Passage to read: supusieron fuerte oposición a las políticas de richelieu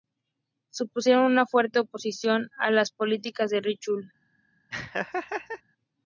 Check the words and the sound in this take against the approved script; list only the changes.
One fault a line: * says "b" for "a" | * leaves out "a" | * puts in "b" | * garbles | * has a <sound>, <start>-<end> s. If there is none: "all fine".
* puts in "una"
* has a laugh, 4.7-5.6 s